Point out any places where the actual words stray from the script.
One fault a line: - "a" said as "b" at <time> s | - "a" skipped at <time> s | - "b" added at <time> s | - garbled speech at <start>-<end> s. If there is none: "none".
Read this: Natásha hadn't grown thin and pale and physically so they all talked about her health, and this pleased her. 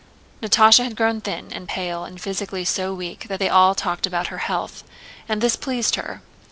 - "hadn't" said as "had" at 0.8 s
- "weak that" added at 2.9 s